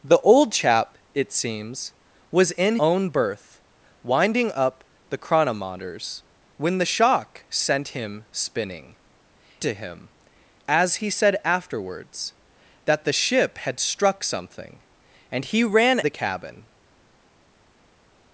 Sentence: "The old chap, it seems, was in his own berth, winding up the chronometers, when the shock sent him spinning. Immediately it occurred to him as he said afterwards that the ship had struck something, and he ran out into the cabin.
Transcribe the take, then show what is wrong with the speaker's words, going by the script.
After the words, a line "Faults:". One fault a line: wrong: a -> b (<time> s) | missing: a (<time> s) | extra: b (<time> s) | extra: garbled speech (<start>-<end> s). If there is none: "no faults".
"The old chap, it seems, was in own berth, winding up the chronometers, when the shock sent him spinning. To him as he said afterwards that the ship had struck something, and he ran the cabin.
Faults:
missing: his (2.8 s)
missing: Immediately it occurred (9.0 s)
missing: out into (16.0 s)